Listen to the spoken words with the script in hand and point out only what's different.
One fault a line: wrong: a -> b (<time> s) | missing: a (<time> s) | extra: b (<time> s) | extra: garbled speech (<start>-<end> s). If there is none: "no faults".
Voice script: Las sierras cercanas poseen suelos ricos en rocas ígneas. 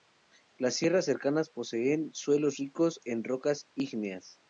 no faults